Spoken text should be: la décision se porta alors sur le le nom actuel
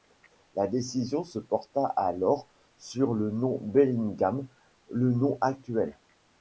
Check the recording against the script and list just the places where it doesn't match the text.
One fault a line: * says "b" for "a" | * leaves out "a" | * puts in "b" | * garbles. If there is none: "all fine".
* puts in "nom bellingham"